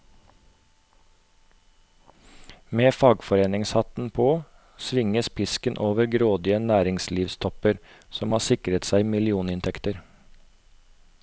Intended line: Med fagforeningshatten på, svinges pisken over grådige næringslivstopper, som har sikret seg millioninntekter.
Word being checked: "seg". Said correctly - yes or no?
yes